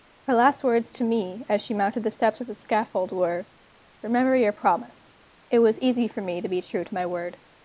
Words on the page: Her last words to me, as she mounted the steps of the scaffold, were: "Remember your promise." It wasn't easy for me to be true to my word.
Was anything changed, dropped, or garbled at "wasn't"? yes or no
yes